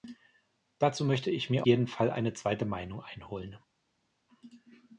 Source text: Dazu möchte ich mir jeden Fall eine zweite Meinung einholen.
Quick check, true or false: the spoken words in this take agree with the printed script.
true